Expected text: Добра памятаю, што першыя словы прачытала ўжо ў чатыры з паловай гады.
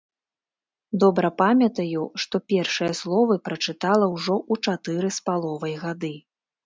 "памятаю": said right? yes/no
yes